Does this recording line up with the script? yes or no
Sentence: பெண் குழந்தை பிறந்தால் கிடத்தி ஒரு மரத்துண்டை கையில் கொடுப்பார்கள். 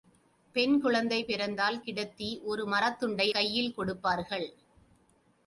yes